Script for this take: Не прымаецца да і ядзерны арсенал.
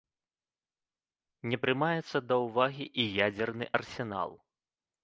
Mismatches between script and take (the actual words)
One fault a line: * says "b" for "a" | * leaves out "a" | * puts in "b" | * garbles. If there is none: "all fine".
* puts in "ўвагі"